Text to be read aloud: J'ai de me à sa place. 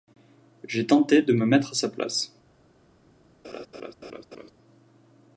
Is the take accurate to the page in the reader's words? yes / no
no